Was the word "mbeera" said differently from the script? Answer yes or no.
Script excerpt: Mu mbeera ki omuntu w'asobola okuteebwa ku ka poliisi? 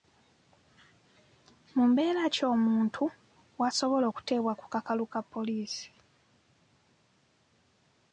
no